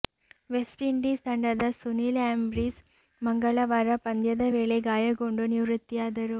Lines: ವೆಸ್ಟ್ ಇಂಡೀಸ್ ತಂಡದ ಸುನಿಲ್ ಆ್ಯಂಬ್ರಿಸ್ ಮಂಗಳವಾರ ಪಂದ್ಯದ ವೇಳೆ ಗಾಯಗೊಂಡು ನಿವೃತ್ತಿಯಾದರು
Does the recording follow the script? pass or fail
pass